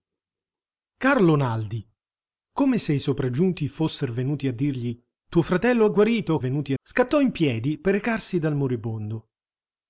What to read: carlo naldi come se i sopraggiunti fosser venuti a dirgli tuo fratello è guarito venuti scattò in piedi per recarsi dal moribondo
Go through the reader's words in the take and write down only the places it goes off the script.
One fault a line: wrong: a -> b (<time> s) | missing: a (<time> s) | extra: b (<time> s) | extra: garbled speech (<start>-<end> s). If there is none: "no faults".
no faults